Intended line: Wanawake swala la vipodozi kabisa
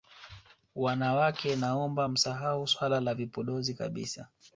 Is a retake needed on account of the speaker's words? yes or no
yes